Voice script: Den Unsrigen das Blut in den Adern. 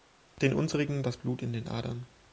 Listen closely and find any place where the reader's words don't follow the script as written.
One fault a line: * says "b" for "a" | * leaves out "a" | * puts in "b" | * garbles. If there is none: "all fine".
all fine